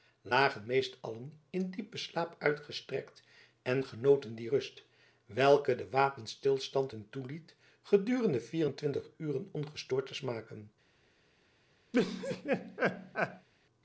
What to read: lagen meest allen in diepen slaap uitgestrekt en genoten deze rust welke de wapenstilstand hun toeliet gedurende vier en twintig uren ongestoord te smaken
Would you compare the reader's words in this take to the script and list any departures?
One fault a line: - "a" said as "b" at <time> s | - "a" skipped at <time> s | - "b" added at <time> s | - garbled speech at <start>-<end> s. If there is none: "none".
- "deze" said as "die" at 4.3 s